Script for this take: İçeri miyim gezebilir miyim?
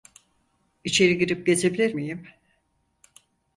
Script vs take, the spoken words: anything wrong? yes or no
yes